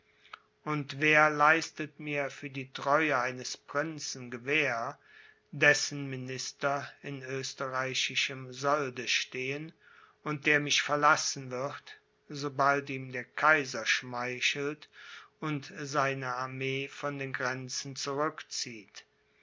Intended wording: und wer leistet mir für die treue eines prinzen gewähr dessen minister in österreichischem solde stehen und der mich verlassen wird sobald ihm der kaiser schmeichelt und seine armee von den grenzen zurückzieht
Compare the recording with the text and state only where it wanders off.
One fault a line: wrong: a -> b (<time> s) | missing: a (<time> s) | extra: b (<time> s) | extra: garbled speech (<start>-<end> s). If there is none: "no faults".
no faults